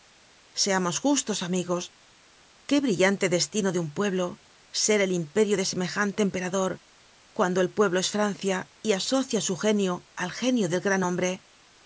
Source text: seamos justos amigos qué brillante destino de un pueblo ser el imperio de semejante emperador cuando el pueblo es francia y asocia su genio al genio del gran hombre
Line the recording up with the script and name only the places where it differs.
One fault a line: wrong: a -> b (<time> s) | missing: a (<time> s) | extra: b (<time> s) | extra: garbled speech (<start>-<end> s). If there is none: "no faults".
no faults